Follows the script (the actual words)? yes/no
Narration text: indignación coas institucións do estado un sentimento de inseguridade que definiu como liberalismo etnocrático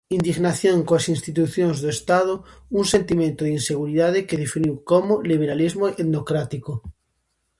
yes